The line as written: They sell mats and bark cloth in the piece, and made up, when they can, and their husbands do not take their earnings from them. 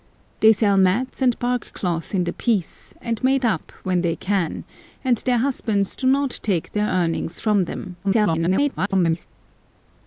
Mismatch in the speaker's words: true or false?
true